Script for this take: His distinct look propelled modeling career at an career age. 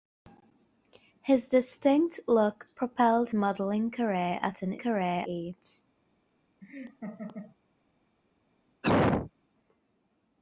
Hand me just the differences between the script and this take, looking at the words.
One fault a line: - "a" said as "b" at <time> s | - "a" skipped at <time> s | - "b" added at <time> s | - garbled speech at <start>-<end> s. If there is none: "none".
none